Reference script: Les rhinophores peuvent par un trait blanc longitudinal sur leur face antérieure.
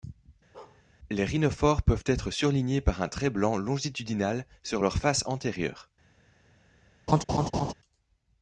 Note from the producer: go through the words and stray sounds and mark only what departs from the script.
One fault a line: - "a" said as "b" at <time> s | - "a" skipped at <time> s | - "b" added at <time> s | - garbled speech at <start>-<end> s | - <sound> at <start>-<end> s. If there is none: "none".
- bark at 0.5-0.8 s
- "être surlignés" added at 2.0 s
- laugh at 7.1-7.7 s